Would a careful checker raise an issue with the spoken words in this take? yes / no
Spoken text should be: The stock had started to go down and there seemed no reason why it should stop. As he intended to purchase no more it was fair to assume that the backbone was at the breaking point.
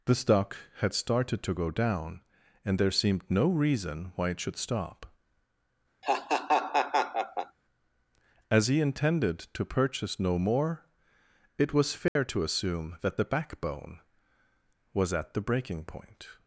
no